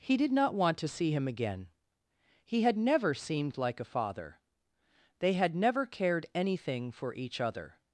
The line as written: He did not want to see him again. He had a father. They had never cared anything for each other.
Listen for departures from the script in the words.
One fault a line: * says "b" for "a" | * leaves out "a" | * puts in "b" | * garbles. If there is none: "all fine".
* puts in "never seemed like"